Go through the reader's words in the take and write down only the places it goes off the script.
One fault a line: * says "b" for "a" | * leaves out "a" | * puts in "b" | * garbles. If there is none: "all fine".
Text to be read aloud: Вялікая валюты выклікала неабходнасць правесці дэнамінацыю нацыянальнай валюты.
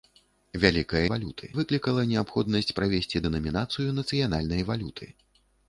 all fine